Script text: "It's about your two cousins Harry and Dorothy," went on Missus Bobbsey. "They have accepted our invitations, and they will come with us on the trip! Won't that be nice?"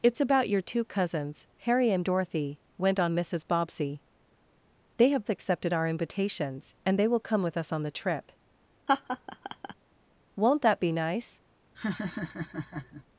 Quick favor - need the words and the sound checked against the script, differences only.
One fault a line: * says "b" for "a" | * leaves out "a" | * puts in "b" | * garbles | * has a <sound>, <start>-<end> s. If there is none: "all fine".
* has a laugh, 8.9-9.7 s
* has a laugh, 11.7-13.0 s